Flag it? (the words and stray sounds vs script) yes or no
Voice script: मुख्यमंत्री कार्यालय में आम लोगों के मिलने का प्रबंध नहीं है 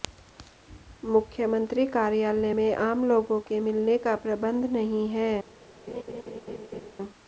yes